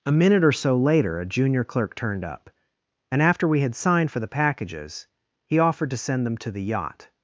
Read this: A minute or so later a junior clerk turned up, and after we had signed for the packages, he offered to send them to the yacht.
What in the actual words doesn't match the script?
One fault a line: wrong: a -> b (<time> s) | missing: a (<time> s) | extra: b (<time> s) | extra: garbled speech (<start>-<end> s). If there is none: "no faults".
no faults